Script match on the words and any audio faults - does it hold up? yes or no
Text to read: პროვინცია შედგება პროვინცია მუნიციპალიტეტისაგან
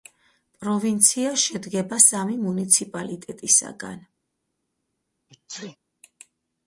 no